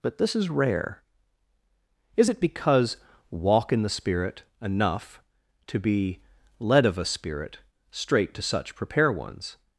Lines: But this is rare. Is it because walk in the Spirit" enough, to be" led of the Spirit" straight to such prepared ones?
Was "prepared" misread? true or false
true